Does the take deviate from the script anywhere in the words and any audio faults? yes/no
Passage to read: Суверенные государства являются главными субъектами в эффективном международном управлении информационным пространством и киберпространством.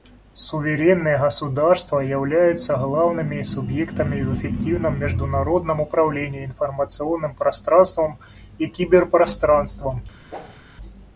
yes